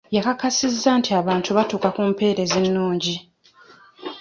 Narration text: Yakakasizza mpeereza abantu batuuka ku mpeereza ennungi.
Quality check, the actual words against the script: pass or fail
fail